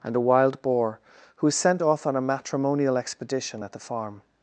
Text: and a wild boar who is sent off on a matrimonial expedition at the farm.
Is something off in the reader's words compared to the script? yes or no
no